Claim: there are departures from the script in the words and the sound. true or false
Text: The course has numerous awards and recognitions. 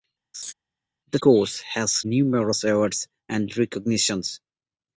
true